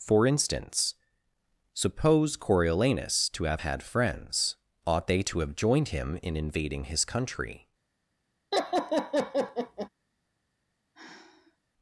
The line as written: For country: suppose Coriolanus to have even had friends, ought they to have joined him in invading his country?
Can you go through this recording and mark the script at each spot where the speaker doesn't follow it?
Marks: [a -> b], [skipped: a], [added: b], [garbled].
For [country: -> instance] suppose Coriolanus to have [skipped: even] had friends, ought they to have joined him in invading his country?